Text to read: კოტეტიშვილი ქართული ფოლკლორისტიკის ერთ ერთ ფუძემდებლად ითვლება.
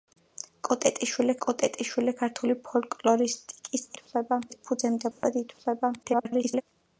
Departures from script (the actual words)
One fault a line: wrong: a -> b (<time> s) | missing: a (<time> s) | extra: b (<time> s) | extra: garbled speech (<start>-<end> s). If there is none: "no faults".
extra: კოტეტიშვილი (1.4 s)
wrong: ერთ -> ითვლება (3.9 s)
extra: garbled speech (6.0-6.6 s)